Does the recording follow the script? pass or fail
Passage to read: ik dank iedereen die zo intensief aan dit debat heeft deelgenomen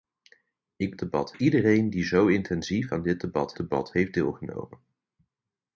fail